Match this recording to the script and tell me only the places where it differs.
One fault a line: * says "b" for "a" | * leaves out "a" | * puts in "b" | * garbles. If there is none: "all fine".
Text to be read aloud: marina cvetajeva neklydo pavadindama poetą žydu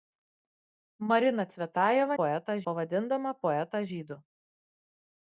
* says "poetą" for "neklydo"